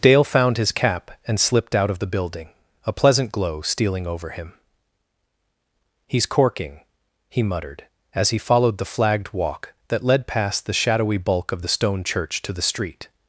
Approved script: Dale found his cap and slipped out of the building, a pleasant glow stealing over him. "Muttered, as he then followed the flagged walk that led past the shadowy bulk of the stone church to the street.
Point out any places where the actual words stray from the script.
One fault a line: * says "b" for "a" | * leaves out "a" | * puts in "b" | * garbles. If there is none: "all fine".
* puts in "He's corking he"
* leaves out "then"